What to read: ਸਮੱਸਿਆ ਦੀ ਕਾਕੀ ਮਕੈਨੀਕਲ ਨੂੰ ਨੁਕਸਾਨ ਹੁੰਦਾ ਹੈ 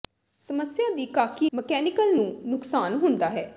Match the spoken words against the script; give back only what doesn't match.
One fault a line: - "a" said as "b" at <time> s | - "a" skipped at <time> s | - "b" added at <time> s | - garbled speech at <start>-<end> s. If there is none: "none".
none